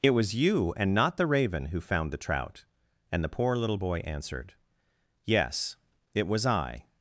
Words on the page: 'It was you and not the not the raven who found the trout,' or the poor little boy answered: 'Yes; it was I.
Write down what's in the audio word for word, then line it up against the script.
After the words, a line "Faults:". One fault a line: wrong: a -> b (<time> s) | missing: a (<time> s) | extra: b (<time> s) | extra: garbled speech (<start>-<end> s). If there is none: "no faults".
'It was you and not the raven who found the trout,' and the poor little boy answered: 'Yes; it was I.
Faults:
missing: not the (1.3 s)
wrong: or -> and (3.1 s)